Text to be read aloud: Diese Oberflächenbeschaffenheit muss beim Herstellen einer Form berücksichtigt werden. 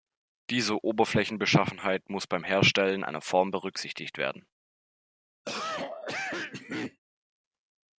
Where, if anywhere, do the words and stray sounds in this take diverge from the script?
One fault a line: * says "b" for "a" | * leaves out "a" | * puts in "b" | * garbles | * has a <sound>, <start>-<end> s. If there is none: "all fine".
* has a cough, 5.4-7.0 s